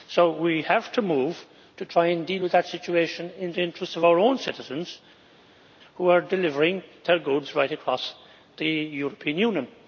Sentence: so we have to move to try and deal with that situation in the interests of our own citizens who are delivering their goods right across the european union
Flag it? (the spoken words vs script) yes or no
no